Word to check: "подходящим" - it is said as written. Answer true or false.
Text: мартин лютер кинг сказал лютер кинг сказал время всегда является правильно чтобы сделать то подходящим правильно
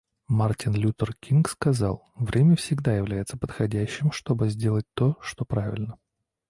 false